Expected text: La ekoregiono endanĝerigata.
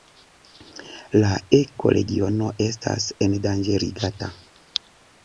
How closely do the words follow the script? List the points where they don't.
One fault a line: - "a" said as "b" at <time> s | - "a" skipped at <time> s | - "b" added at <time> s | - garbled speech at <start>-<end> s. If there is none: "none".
- "estas" added at 2.7 s